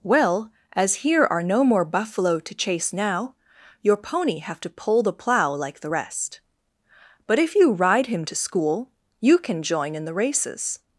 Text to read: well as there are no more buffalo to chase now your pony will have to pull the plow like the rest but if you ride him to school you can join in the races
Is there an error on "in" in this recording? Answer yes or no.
no